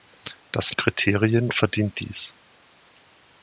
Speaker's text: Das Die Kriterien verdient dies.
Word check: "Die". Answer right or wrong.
right